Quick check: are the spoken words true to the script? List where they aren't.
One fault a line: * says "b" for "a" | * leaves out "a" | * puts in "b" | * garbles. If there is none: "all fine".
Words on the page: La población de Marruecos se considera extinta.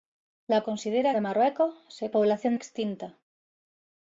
* says "considera" for "población"
* says "población" for "considera"